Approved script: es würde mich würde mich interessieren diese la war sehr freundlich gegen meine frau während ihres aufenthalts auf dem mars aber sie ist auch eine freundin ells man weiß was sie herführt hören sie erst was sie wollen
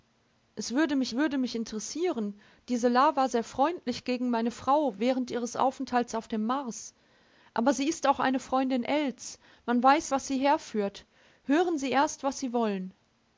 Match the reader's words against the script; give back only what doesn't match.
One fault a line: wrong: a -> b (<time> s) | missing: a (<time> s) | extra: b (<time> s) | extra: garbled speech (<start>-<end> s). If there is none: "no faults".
no faults